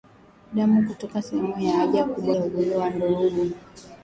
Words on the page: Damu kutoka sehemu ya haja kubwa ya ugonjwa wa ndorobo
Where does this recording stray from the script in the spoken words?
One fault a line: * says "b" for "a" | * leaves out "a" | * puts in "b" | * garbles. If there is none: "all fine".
all fine